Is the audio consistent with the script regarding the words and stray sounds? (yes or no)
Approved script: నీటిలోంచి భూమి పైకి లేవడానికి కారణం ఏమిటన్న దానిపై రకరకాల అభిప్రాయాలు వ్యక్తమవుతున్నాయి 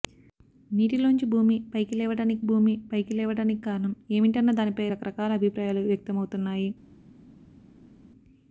no